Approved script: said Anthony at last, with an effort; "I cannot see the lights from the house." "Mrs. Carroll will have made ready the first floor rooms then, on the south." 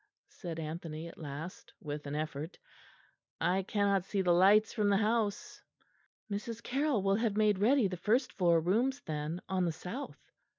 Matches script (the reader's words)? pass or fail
pass